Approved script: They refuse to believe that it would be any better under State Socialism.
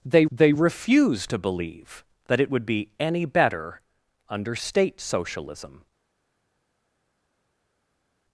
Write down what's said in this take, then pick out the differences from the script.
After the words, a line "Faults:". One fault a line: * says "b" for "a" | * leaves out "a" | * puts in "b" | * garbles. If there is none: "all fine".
They they refuse to believe that it would be any better under State Socialism.
Faults:
* puts in "they"